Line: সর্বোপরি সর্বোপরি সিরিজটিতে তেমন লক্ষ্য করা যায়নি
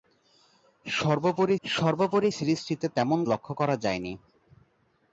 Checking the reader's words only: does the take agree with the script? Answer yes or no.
yes